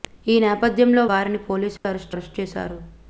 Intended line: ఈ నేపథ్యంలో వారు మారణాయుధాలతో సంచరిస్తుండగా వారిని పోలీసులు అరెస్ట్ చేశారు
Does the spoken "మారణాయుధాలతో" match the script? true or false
false